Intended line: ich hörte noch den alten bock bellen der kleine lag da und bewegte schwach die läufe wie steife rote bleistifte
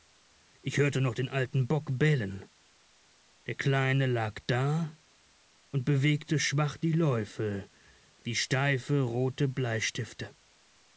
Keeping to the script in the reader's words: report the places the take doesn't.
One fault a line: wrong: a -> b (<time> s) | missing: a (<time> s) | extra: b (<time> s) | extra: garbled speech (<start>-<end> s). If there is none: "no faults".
no faults